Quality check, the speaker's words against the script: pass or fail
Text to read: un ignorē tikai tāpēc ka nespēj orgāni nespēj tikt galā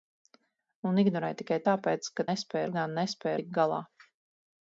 pass